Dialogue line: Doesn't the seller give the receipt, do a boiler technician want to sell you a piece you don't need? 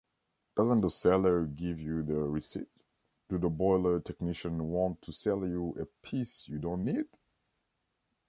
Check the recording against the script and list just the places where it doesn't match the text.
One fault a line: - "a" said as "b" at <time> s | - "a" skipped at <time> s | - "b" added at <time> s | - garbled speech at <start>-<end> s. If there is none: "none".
- "you" added at 1.8 s
- "a" said as "the" at 3.4 s